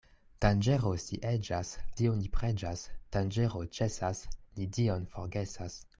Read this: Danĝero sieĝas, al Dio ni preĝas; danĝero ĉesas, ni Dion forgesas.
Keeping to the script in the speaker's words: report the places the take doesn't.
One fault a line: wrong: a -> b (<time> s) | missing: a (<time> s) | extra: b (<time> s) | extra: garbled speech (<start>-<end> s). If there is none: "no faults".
missing: al (1.7 s)